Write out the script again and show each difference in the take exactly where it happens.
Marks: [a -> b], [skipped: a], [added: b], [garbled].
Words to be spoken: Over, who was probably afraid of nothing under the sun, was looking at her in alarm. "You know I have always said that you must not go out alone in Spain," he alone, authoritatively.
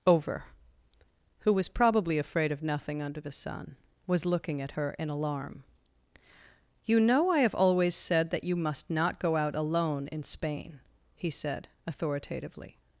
Over, who was probably afraid of nothing under the sun, was looking at her in alarm. "You know I have always said that you must not go out alone in Spain," he [alone, -> said] authoritatively.